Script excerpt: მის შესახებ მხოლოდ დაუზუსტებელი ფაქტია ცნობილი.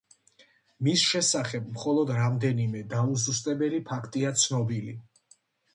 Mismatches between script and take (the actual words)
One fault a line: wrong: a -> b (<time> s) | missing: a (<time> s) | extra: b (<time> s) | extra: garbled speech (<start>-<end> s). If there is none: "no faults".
extra: რამდენიმე (2.2 s)